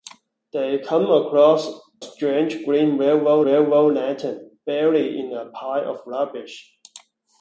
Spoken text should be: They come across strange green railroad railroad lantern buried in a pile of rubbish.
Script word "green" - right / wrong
right